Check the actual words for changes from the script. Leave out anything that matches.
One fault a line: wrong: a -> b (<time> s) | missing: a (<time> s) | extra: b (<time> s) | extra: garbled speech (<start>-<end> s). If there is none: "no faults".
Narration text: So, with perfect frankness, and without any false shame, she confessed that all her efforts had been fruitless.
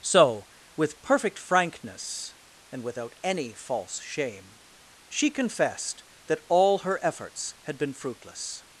no faults